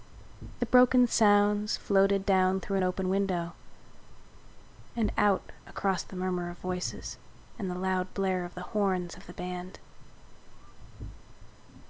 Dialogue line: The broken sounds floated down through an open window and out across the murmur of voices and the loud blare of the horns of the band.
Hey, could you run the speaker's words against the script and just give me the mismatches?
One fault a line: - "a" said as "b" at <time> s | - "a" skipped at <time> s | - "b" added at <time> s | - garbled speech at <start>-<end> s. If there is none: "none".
none